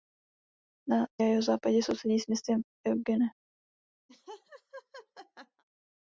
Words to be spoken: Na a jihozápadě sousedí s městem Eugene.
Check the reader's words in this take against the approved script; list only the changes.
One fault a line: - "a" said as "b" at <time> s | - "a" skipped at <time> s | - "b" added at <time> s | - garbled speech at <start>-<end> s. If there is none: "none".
none